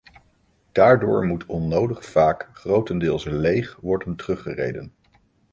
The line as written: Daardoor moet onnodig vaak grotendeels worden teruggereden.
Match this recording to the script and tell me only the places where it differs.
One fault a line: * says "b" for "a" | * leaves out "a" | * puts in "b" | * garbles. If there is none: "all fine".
* puts in "leeg"